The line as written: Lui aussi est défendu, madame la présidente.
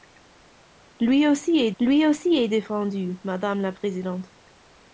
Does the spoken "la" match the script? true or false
true